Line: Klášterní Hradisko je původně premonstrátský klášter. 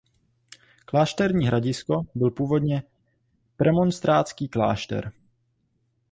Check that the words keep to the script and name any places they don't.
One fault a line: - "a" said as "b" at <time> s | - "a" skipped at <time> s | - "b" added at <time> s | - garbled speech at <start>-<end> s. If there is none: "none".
- "je" said as "byl" at 2.1 s